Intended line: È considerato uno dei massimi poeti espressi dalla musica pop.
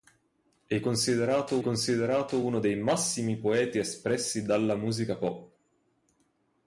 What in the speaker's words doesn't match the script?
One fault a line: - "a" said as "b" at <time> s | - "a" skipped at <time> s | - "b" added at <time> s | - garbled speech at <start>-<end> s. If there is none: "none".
- "considerato" added at 1.6 s